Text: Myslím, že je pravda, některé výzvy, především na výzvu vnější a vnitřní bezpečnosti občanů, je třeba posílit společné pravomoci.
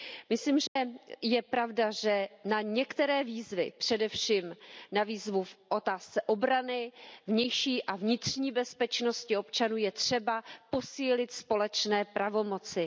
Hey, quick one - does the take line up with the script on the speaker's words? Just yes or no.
no